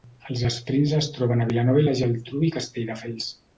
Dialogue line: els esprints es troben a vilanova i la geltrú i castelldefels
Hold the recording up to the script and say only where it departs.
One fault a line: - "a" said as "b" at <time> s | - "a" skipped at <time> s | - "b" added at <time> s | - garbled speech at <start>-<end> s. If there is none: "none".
none